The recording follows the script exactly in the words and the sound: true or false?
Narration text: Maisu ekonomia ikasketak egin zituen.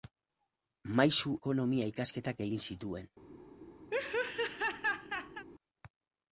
false